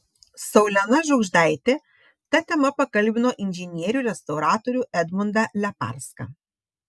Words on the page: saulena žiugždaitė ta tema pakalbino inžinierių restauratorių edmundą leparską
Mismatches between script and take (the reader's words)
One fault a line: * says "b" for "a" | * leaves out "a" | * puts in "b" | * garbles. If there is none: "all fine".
all fine